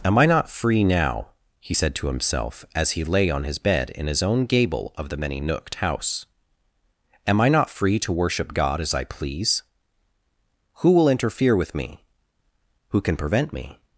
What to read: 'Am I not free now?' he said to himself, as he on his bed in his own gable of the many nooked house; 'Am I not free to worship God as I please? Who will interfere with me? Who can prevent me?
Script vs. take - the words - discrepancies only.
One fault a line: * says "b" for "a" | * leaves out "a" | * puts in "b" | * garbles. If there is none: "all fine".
* puts in "lay"